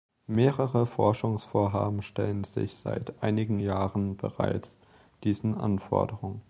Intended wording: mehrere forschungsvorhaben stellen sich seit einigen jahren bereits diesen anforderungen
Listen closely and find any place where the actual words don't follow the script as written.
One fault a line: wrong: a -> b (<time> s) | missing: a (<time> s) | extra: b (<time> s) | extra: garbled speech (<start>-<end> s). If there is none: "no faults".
no faults